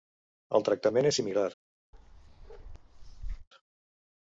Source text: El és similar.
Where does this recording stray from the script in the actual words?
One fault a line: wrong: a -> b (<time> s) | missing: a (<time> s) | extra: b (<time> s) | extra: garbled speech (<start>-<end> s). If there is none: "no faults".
extra: tractament (0.7 s)